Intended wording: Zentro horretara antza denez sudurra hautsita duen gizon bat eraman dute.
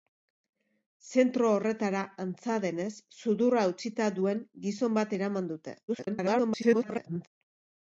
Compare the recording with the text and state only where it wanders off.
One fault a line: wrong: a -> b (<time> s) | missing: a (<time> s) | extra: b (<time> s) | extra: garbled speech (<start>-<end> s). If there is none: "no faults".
extra: garbled speech (5.9-7.3 s)